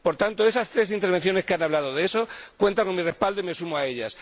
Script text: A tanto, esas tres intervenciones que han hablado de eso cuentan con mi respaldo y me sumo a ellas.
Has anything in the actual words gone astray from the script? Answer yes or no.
yes